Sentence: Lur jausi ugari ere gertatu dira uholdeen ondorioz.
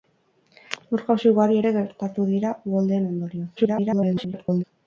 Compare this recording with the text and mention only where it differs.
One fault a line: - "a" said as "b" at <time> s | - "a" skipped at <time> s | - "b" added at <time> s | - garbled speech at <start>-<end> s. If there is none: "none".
- garbled speech at 3.6-4.6 s